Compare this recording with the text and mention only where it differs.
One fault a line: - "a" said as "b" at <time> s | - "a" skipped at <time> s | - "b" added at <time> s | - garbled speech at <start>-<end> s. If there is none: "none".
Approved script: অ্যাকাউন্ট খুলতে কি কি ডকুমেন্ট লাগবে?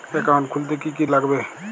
- "ডকুমেন্ট" skipped at 1.0 s